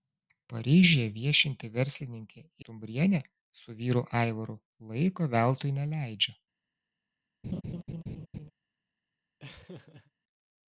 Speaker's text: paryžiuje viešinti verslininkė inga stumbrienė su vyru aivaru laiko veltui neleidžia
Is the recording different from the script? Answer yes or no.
yes